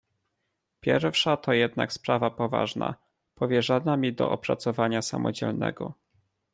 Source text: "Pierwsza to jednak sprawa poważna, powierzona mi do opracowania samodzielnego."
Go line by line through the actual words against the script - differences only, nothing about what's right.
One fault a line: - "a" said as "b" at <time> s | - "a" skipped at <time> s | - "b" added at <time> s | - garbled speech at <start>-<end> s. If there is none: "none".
none